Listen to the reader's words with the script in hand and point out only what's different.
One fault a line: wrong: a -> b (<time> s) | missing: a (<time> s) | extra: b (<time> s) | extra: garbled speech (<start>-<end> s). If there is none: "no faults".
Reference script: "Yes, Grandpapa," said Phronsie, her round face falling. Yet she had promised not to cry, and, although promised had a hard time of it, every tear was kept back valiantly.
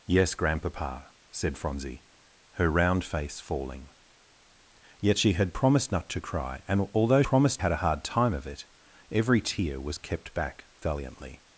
no faults